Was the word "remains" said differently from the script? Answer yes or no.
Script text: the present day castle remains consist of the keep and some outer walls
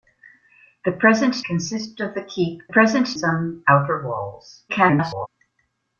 yes